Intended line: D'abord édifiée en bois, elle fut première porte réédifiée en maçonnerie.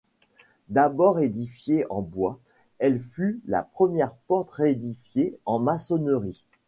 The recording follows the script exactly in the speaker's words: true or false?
false